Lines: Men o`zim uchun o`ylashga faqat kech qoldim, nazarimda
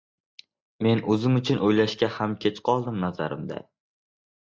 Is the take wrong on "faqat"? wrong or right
wrong